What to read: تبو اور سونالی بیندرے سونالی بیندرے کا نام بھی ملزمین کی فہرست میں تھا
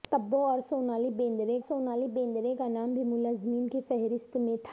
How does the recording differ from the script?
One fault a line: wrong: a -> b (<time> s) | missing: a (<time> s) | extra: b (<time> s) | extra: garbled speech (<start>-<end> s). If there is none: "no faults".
no faults